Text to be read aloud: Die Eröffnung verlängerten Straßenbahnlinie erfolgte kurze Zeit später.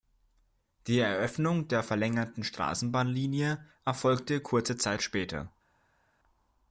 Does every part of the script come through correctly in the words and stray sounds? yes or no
no